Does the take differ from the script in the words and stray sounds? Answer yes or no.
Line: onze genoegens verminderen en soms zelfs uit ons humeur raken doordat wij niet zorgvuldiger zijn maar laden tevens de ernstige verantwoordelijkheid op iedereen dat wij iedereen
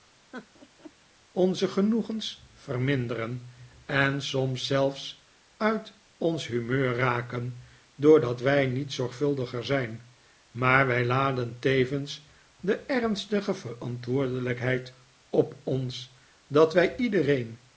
yes